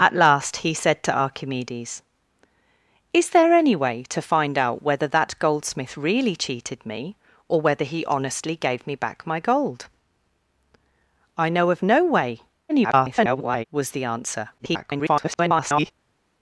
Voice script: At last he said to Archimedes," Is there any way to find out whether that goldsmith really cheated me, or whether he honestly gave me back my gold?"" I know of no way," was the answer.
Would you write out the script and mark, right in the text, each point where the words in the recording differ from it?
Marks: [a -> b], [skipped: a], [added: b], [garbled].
At last he said to Archimedes," Is there any way to find out whether that goldsmith really cheated me, or whether he honestly gave me back my gold?"" I know of no way," [garbled] was the answer. [garbled]